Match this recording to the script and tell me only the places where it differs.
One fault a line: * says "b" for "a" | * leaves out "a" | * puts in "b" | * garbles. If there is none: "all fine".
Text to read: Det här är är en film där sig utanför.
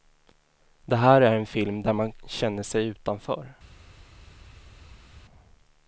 * leaves out "är"
* puts in "man känner"